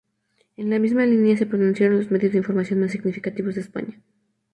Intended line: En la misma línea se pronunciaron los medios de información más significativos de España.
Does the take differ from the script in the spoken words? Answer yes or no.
no